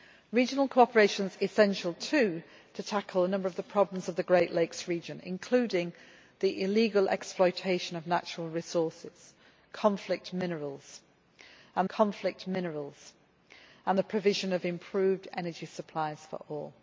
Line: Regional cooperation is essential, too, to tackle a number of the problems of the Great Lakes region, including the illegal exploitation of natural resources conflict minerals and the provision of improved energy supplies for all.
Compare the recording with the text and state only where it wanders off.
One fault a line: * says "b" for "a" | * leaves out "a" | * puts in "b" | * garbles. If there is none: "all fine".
* puts in "conflict minerals and"